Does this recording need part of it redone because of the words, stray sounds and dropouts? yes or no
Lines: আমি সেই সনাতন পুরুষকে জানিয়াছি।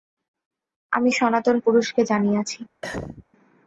yes